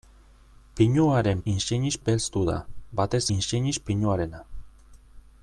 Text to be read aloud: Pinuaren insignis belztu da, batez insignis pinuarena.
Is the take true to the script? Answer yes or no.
yes